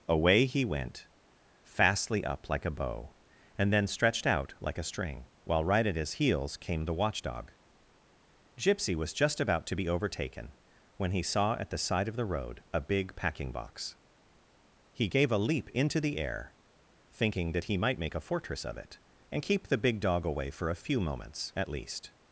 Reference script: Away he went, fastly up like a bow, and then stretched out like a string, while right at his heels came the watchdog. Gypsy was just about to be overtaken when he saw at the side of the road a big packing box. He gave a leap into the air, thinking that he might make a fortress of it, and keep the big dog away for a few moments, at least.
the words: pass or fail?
pass